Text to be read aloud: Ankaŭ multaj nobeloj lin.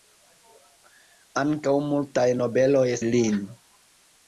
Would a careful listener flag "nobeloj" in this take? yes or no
no